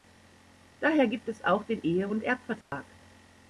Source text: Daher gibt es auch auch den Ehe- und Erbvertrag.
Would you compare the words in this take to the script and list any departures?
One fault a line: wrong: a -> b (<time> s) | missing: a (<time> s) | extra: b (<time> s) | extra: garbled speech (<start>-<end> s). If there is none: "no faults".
missing: auch (1.6 s)